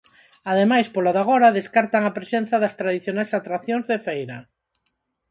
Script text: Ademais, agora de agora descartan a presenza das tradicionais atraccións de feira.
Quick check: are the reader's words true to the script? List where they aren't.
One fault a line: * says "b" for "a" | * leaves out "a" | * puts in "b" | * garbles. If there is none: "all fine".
* says "polo" for "agora"